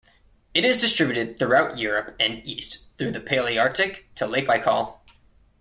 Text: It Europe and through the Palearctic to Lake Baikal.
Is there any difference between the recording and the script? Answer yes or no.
yes